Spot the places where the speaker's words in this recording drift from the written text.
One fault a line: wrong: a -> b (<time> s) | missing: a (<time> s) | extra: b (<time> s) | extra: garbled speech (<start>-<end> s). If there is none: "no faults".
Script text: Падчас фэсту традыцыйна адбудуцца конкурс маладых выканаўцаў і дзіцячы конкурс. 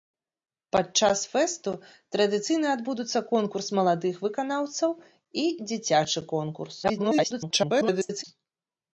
extra: garbled speech (6.8-8.2 s)